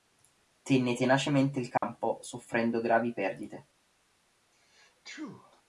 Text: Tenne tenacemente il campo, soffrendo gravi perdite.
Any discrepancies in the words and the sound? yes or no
yes